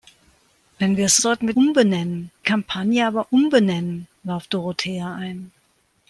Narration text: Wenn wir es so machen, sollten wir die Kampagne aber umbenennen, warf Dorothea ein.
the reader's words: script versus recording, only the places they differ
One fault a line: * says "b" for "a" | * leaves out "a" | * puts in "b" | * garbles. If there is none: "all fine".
* leaves out "so machen"
* says "umbenennen" for "die"